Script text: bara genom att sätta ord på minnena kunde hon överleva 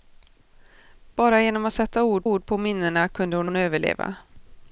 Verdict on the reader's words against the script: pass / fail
fail